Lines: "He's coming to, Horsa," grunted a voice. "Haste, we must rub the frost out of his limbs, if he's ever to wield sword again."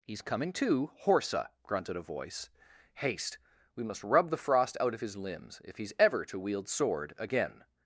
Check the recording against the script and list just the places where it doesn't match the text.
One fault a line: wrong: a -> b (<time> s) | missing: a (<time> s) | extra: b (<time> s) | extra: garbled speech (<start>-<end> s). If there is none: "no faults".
no faults